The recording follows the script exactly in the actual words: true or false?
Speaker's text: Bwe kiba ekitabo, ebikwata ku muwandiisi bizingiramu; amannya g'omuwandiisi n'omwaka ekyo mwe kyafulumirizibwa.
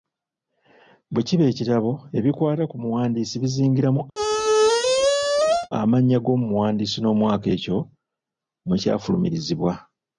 true